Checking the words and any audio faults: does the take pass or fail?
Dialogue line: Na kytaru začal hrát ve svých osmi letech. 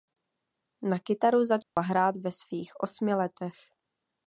fail